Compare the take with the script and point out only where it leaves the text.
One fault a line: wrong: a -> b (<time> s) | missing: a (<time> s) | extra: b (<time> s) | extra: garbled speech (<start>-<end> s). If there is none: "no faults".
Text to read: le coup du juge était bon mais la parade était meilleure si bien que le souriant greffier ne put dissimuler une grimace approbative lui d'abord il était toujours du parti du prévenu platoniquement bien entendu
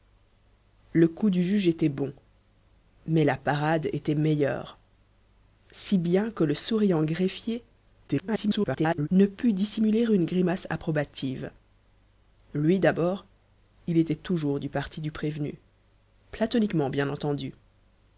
extra: garbled speech (8.1-9.1 s)